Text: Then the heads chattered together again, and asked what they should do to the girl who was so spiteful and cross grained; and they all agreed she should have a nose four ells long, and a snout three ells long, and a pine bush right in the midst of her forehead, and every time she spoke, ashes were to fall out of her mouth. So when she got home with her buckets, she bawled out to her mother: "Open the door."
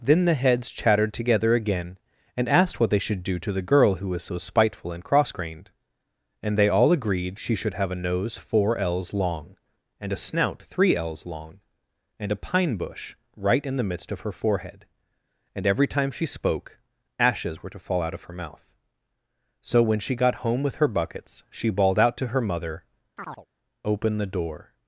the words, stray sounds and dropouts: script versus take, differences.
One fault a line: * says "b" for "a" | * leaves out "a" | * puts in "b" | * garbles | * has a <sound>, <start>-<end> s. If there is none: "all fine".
* has a chirp, 23.2-23.5 s